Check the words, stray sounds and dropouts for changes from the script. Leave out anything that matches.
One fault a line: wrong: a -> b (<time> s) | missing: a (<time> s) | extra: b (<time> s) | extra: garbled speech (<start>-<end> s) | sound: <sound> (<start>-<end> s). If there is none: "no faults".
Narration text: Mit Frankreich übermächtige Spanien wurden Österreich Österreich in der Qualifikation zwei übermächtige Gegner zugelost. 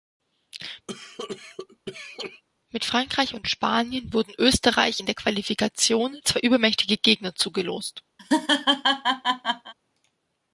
sound: cough (0.9-2.4 s)
wrong: übermächtige -> und (3.3 s)
missing: Österreich (5.0 s)
sound: laugh (8.2-9.7 s)